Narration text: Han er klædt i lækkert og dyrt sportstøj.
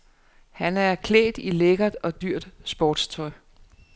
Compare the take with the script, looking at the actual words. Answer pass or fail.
pass